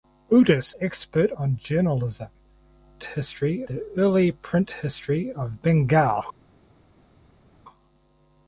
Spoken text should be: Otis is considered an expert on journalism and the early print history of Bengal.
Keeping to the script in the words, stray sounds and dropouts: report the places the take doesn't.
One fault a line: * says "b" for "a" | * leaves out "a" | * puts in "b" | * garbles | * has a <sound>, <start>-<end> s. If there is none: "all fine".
* leaves out "is considered an"
* says "history" for "and"